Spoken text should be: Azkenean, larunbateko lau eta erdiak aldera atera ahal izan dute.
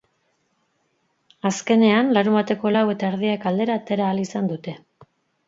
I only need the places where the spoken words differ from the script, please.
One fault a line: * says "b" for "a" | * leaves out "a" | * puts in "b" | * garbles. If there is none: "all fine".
all fine